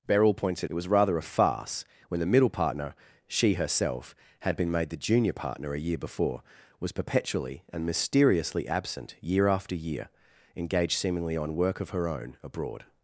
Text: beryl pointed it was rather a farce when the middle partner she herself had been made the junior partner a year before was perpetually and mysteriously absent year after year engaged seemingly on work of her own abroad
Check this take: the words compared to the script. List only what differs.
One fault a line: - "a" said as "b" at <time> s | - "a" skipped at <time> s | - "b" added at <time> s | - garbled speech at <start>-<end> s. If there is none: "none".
none